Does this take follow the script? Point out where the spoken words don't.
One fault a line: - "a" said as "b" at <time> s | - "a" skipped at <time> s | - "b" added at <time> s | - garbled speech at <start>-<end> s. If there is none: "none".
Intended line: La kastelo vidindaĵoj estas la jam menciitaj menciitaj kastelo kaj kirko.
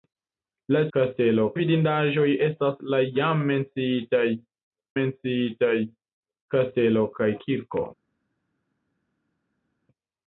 none